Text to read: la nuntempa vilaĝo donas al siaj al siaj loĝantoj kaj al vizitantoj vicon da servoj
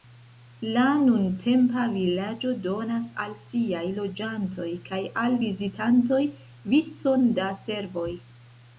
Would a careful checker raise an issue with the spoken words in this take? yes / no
yes